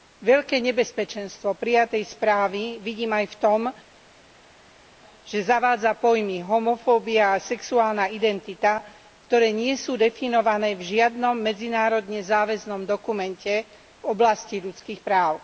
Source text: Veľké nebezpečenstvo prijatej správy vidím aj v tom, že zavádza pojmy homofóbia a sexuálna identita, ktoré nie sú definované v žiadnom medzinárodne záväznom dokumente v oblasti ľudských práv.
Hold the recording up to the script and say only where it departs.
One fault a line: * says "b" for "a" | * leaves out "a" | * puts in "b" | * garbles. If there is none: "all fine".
all fine